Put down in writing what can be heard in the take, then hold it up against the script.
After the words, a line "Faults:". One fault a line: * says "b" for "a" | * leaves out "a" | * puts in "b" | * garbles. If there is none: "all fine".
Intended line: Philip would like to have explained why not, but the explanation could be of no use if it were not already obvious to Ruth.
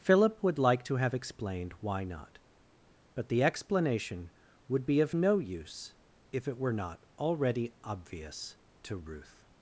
Philip would like to have explained why not, but the explanation would be of no use if it were not already obvious to Ruth.
Faults:
* says "would" for "could"